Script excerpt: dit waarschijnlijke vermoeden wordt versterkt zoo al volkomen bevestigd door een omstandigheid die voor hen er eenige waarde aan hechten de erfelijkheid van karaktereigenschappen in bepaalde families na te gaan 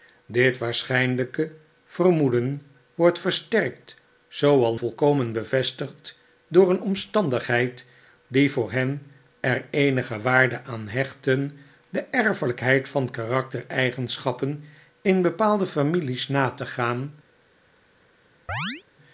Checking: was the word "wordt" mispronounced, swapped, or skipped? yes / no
no